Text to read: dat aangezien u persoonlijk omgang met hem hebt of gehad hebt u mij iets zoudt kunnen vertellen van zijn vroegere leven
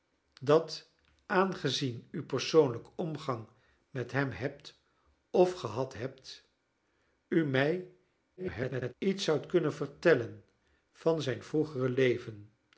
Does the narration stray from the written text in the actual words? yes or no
yes